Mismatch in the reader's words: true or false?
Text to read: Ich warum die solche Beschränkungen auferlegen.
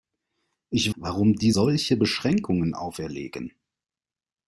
false